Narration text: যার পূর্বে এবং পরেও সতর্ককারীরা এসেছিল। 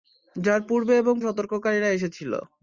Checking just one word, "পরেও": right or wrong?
wrong